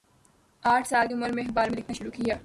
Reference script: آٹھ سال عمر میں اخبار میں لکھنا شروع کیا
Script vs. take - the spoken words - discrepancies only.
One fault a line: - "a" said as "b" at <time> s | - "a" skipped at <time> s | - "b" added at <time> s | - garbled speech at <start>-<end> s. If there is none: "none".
none